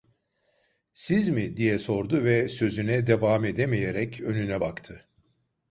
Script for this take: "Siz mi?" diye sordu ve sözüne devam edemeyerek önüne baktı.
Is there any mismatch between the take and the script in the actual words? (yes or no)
no